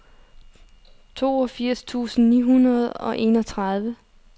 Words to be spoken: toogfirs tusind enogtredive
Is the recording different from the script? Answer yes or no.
yes